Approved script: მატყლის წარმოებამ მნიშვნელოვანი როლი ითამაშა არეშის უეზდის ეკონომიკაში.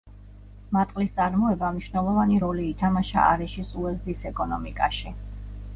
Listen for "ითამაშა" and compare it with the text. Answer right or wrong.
right